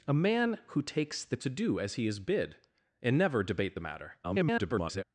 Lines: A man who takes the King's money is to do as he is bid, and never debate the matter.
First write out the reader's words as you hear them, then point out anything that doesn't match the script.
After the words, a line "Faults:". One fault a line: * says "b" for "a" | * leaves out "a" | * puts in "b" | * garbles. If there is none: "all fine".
A man who takes the To do as he is bid, and never debate the matter. [garbled]
Faults:
* leaves out "King's money is"
* garbles